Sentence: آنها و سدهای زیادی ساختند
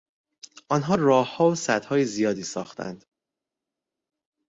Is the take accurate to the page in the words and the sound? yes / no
no